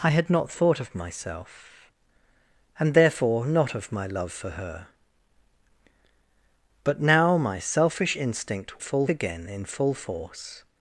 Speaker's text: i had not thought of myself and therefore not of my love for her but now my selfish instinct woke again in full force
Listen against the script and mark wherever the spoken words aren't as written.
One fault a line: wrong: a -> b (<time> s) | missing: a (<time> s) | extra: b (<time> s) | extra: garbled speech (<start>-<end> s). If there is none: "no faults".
wrong: woke -> full (8.8 s)